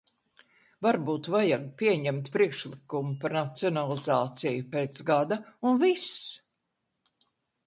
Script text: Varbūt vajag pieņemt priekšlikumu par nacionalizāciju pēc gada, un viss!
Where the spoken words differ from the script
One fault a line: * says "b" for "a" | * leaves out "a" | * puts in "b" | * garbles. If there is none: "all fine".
all fine